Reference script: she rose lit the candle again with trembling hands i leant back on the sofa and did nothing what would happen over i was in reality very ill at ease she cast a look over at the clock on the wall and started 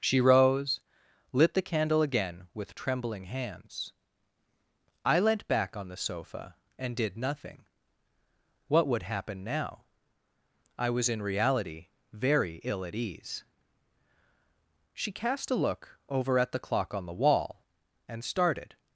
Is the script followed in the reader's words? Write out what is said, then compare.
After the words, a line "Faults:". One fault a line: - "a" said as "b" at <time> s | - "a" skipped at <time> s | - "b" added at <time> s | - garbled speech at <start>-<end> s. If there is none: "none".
she rose lit the candle again with trembling hands i leant back on the sofa and did nothing what would happen now i was in reality very ill at ease she cast a look over at the clock on the wall and started
Faults:
- "over" said as "now" at 9.4 s